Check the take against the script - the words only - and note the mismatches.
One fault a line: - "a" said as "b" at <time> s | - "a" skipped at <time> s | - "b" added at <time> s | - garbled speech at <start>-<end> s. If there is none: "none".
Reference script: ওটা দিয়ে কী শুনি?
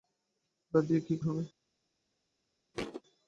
none